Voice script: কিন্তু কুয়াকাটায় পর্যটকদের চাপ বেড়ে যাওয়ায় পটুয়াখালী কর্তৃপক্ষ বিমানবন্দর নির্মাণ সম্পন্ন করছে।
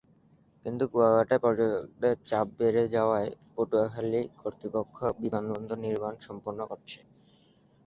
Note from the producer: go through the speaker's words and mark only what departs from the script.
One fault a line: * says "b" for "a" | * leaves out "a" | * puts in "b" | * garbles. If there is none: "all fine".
all fine